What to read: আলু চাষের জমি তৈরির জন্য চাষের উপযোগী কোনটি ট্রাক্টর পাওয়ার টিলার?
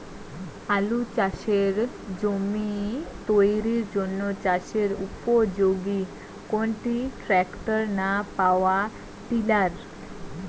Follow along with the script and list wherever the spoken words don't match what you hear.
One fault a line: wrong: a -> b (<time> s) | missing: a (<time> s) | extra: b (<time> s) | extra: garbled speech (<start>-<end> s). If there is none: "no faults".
extra: না (8.0 s)